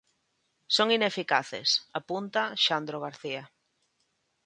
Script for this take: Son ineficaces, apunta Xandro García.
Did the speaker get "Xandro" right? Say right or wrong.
right